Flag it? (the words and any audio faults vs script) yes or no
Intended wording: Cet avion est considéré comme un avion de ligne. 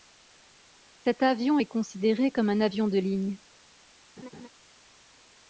yes